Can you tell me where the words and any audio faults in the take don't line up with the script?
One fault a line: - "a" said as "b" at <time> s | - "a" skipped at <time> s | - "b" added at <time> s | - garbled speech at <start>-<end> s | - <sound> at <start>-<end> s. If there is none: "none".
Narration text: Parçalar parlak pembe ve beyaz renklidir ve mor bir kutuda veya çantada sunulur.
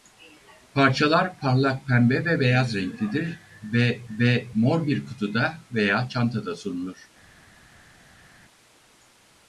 - "ve" added at 4.1 s